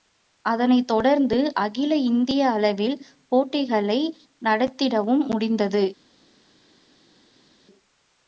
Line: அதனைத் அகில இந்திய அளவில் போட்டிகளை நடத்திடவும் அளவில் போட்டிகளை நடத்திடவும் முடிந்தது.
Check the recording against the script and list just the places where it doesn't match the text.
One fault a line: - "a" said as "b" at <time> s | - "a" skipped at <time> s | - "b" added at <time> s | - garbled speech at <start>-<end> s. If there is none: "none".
- "தொடர்ந்து" added at 0.9 s
- "அளவில் போட்டிகளை நடத்திடவும்" skipped at 5.3 s